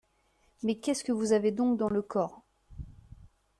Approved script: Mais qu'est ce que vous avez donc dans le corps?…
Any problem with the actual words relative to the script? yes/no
no